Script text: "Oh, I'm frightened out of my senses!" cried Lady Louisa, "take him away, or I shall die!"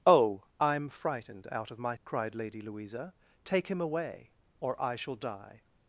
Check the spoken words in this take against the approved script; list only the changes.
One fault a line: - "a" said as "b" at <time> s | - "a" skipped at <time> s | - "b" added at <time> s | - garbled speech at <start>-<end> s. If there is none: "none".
- "senses" skipped at 1.9 s